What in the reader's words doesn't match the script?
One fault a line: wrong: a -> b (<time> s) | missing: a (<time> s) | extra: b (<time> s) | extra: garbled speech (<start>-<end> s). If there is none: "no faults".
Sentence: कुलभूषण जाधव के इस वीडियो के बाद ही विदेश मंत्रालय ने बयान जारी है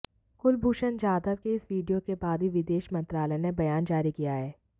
extra: किया (4.1 s)